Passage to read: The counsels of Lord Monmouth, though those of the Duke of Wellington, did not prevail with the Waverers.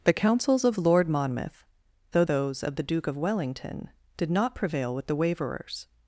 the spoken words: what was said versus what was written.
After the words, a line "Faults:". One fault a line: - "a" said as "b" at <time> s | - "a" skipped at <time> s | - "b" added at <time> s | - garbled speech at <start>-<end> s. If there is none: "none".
The counsels of Lord Monmouth, though those of the Duke of Wellington, did not prevail with the Waverers.
Faults:
none